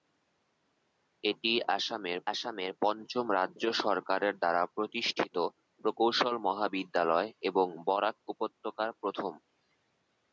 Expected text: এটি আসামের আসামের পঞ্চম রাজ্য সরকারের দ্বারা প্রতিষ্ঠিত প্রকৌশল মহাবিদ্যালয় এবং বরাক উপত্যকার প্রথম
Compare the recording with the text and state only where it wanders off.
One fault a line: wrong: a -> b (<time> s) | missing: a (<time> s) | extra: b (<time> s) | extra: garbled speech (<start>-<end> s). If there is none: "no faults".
no faults